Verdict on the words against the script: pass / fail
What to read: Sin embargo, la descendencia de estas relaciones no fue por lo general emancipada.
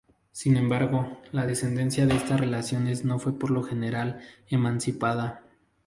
pass